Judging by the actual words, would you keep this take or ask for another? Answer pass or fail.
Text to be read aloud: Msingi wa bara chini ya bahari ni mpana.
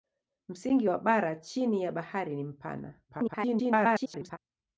fail